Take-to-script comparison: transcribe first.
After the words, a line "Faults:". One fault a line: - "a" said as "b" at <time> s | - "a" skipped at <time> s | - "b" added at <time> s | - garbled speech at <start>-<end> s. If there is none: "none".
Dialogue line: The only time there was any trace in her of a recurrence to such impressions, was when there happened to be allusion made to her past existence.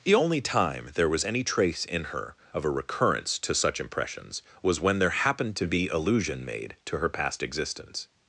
The only time there was any trace in her of a recurrence to such impressions, was when there happened to be allusion made to her past existence.
Faults:
none